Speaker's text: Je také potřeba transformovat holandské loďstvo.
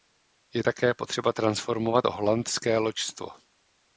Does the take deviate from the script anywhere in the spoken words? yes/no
no